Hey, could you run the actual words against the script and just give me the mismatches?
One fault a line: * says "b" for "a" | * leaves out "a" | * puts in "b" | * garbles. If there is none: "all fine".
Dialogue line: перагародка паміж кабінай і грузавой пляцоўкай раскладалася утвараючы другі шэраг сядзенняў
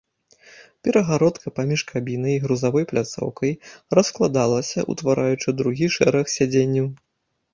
all fine